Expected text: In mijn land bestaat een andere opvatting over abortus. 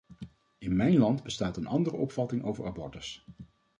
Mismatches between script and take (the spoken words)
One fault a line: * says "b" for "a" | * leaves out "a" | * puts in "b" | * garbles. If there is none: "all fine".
all fine